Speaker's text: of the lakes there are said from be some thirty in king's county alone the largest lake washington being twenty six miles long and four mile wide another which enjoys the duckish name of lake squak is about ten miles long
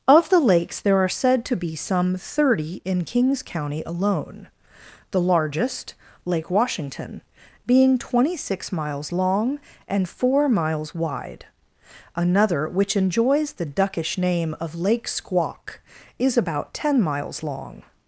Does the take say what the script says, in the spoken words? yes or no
no